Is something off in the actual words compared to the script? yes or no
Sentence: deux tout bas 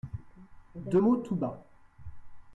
yes